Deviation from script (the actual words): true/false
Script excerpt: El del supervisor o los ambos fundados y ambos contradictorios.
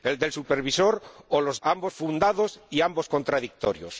false